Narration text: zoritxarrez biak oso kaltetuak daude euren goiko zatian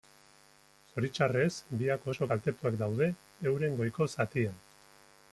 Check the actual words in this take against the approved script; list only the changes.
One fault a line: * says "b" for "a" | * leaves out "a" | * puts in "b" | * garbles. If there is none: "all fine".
all fine